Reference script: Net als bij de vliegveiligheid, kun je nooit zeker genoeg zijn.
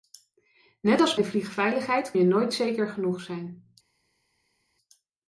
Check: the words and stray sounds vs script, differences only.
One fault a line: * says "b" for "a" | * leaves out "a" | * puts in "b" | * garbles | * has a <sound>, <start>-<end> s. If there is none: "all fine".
* leaves out "bij"
* leaves out "kun"